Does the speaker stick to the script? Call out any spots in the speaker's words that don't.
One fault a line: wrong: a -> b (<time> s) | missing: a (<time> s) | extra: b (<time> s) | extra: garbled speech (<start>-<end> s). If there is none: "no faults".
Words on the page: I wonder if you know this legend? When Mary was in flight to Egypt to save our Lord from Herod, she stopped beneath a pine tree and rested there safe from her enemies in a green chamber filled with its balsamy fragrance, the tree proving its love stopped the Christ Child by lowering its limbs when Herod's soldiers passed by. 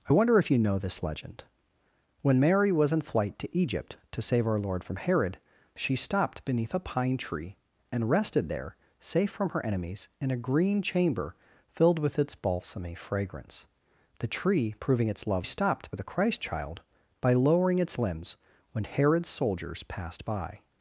no faults